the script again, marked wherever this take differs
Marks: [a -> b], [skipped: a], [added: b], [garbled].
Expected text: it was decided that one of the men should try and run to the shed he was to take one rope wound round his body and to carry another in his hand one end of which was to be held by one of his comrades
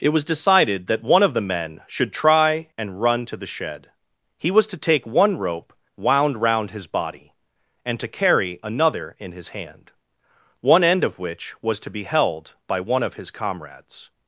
it was decided that one of the men should try and run to the shed he was to take one rope wound round his body and to carry another in his hand one end of which was to be held by one of his comrades